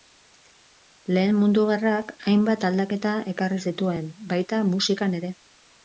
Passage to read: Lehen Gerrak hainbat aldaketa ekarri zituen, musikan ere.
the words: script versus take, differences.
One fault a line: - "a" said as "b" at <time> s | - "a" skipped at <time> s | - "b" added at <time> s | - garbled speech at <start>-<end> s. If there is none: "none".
- "Mundu" added at 1.4 s
- "baita" added at 4.4 s